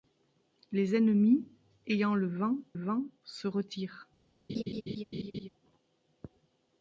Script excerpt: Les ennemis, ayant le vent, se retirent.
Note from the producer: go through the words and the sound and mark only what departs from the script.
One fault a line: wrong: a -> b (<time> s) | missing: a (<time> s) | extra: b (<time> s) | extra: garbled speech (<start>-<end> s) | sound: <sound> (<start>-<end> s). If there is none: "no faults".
extra: vent (2.7 s)
sound: laugh (4.5-5.5 s)